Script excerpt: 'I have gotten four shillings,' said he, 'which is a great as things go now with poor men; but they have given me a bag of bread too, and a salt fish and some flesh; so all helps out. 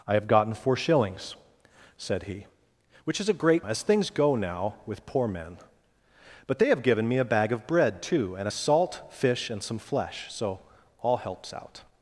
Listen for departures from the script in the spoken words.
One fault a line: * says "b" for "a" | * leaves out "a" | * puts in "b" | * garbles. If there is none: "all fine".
all fine